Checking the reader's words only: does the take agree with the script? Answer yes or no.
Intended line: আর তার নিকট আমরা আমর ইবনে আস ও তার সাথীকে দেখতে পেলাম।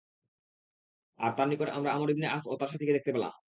yes